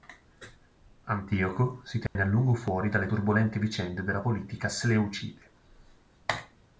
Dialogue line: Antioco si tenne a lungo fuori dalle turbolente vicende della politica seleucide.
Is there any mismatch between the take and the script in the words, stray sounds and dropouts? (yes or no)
yes